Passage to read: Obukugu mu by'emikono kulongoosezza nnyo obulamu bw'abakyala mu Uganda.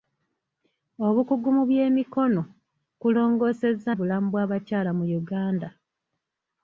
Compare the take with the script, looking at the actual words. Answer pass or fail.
fail